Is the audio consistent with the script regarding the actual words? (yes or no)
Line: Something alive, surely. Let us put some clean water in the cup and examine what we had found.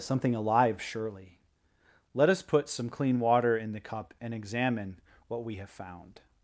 no